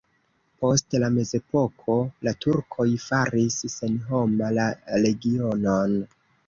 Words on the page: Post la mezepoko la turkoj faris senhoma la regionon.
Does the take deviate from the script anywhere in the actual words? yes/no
no